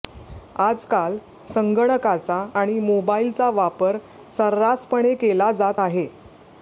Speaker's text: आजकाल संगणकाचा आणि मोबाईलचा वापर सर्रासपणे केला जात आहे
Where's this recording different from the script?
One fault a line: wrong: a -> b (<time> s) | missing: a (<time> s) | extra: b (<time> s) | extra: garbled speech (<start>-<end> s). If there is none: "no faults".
no faults